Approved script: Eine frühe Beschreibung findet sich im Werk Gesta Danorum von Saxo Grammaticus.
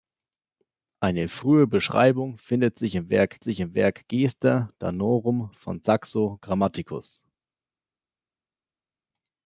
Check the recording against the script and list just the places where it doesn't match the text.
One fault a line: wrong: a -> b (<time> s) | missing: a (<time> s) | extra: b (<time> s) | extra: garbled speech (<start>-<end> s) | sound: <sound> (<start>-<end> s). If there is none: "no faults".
extra: sich im Werk (3.4 s)